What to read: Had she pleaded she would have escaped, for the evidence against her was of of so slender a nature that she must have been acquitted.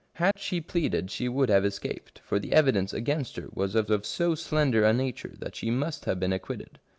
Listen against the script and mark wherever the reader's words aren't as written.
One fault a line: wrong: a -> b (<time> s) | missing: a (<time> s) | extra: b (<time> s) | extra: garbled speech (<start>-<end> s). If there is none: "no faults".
no faults